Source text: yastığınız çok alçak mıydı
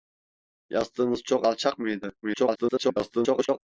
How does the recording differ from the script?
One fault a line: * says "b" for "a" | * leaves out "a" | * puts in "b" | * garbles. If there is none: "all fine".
* garbles